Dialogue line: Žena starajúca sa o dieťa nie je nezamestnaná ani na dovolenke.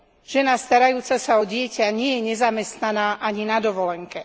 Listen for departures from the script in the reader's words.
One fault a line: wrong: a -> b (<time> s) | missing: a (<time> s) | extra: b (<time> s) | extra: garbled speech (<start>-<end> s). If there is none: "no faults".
no faults